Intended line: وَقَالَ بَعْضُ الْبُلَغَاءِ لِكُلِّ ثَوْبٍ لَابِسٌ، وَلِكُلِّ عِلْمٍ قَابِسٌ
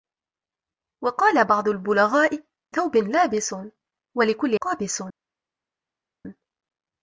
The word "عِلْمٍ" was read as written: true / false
false